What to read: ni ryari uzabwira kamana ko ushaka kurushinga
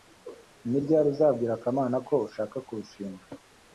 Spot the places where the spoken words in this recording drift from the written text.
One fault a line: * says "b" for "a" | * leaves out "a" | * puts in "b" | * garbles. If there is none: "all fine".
all fine